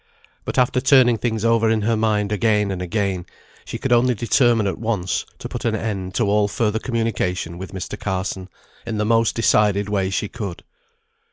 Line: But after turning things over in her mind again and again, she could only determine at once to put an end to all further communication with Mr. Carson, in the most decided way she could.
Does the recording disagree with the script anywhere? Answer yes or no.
no